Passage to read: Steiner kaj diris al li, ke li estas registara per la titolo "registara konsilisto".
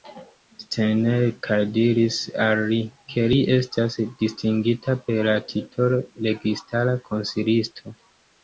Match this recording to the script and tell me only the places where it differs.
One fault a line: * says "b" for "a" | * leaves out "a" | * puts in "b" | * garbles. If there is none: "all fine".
* says "distingita" for "registara"